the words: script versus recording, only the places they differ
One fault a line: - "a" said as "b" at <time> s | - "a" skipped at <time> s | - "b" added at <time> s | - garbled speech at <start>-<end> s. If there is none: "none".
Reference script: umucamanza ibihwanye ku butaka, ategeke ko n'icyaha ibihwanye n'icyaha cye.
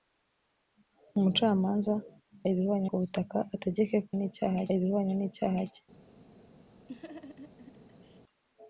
none